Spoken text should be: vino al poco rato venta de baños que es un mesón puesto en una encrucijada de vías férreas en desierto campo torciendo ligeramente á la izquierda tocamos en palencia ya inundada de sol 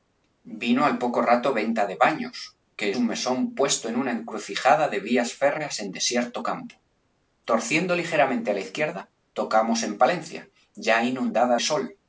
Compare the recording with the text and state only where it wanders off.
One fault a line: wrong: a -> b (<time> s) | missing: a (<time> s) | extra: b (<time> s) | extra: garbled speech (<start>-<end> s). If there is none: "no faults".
missing: es (2.9 s)
missing: de (11.6 s)